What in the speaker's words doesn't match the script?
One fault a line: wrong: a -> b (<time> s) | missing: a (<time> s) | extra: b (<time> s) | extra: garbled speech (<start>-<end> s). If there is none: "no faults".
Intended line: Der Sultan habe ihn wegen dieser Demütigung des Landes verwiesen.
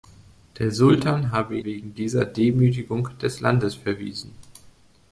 missing: ihn (1.6 s)